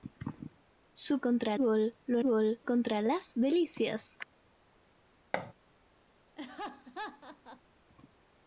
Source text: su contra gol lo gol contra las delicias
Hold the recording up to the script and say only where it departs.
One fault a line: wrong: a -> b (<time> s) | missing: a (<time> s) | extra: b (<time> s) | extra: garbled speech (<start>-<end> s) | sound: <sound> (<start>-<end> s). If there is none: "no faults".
sound: thud (5.3-5.5 s)
sound: laugh (6.4-7.6 s)